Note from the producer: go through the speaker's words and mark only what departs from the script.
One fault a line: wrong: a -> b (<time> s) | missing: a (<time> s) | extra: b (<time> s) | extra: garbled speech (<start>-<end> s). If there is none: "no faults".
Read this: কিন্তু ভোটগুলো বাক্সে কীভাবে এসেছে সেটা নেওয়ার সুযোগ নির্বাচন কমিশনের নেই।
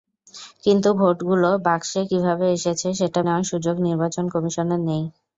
no faults